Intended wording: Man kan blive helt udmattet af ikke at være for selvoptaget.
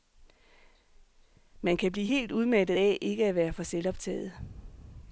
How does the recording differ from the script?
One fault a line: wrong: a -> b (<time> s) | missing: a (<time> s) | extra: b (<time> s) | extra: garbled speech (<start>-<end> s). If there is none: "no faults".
no faults